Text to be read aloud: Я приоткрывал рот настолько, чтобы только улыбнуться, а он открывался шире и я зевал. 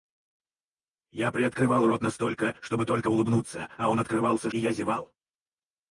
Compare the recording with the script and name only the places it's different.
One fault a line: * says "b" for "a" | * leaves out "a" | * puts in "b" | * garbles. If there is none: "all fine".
* leaves out "шире"